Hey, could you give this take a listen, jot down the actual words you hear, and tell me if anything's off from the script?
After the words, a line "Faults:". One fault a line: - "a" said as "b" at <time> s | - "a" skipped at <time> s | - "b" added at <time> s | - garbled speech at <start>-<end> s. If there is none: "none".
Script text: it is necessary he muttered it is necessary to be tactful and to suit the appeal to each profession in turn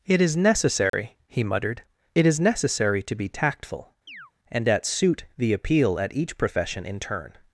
it is necessary he muttered it is necessary to be tactful and at suit the appeal at each profession in turn
Faults:
- "to" said as "at" at 4.7 s
- "to" said as "at" at 6.0 s